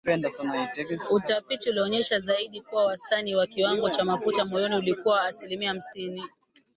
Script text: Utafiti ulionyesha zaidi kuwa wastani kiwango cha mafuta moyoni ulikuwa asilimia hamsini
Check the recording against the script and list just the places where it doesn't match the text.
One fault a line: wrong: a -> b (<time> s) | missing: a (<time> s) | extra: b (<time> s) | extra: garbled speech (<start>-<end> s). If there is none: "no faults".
extra: wa (3.4 s)